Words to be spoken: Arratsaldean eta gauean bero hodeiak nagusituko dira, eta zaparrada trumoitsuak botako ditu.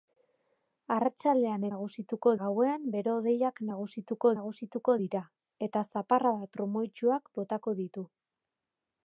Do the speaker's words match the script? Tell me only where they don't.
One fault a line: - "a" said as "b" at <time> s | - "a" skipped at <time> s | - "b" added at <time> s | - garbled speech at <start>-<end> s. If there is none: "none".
- "eta" said as "nagusituko" at 1.7 s
- "nagusituko" added at 4.3 s